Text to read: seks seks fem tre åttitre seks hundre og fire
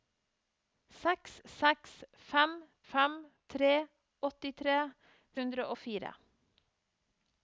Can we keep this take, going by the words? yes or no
no